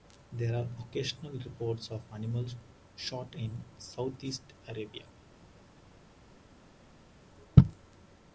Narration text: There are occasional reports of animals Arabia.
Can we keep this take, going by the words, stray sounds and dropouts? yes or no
no